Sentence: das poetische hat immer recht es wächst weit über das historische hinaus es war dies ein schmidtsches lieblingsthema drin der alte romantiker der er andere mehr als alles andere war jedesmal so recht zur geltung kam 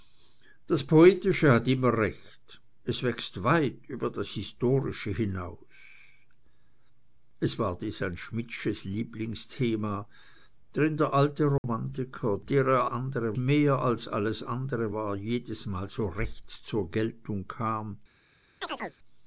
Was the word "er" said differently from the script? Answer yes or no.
no